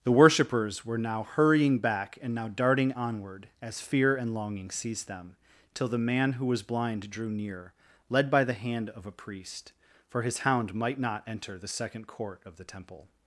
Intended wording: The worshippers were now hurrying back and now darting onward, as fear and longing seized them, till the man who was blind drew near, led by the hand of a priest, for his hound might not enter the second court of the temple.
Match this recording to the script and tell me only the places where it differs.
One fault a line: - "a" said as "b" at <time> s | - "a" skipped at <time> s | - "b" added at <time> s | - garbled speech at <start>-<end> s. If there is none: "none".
none